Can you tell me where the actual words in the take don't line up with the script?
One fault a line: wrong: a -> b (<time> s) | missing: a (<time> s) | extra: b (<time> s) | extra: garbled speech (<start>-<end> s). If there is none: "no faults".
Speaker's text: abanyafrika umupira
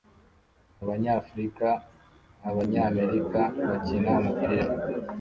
extra: abanyamerika bakina (2.5 s)